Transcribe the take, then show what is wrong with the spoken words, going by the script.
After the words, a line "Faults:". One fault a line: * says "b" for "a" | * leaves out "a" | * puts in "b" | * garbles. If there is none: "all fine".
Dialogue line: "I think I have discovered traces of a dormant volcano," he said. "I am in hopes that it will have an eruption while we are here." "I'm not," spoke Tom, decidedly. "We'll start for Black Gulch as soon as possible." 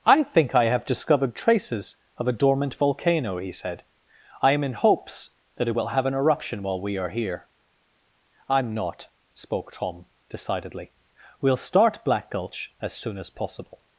"I think I have discovered traces of a dormant volcano," he said. "I am in hopes that it will have an eruption while we are here." "I'm not," spoke Tom, decidedly. "We'll start Black Gulch as soon as possible."
Faults:
* leaves out "for"